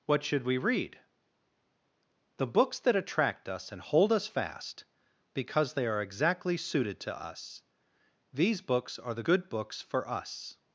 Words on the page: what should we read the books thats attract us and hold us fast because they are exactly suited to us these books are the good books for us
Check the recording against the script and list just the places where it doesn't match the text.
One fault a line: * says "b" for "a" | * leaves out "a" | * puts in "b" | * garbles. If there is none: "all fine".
* says "that" for "thats"